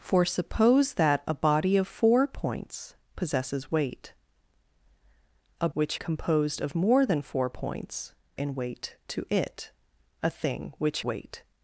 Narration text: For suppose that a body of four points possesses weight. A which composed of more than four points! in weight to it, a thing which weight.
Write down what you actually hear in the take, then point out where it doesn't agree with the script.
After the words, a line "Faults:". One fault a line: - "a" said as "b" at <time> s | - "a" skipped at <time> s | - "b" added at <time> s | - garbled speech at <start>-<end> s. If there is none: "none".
For suppose that a body of four points possesses weight. A which composed of more than four points! in weight to it, a thing which weight.
Faults:
none